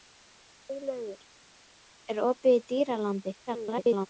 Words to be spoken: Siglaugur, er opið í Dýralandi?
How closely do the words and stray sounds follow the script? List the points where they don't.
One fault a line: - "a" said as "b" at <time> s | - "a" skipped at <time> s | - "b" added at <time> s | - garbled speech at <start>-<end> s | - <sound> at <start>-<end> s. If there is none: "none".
- garbled speech at 3.5-4.1 s